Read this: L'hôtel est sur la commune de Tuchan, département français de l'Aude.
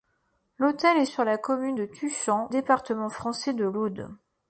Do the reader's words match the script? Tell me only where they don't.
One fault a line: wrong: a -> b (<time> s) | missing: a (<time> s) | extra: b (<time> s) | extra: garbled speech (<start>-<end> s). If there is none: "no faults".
no faults